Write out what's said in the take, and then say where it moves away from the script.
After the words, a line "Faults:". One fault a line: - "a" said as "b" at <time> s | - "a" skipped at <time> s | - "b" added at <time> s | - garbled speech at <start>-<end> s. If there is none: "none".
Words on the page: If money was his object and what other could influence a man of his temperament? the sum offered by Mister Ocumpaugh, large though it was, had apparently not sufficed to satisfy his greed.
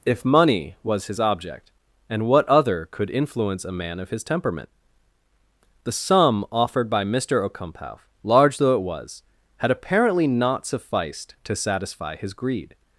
If money was his object and what other could influence a man of his temperament? the sum offered by Mister Ocumpaugh, large though it was, had apparently not sufficed to satisfy his greed.
Faults:
none